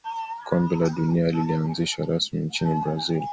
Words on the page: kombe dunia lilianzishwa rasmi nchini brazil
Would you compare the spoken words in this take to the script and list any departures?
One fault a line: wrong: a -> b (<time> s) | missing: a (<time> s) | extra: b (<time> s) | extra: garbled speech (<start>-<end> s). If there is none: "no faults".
extra: la (0.8 s)